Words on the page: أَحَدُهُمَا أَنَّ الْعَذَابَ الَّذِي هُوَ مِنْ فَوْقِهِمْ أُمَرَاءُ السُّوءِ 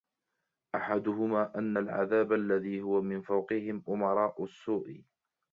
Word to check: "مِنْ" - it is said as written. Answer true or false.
true